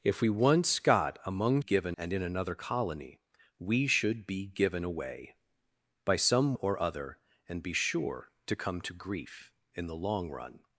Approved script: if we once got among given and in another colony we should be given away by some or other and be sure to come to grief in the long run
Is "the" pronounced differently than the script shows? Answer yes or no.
no